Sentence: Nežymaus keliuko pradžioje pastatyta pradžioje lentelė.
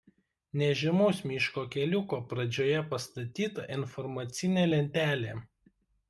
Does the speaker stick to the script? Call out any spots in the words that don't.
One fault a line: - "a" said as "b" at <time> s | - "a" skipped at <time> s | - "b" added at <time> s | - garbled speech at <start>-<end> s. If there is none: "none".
- "miško" added at 1.3 s
- "pradžioje" said as "informacinė" at 3.8 s